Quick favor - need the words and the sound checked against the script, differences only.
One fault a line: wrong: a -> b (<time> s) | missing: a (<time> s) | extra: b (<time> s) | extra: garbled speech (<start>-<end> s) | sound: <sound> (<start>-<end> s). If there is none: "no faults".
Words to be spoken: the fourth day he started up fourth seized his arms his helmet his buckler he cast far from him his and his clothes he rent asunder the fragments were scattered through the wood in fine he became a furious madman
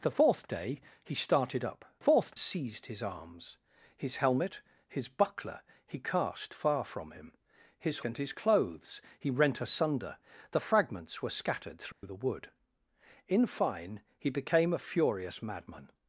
sound: dropout (11.9-12.0 s)